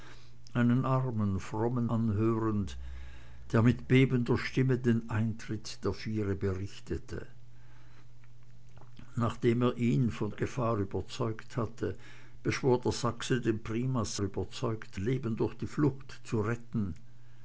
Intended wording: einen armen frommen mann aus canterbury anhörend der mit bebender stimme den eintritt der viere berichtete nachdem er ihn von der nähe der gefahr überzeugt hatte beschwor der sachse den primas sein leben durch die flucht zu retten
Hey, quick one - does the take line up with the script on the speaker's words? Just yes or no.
no